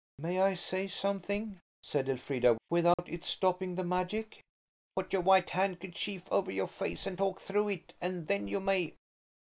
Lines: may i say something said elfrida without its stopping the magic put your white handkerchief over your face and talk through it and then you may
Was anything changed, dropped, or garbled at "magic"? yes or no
no